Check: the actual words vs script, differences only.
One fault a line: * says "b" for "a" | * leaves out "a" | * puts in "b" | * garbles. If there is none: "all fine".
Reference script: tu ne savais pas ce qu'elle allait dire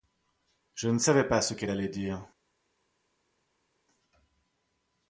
* says "je" for "tu"